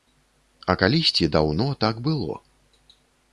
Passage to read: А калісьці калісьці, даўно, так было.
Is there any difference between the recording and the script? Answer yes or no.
yes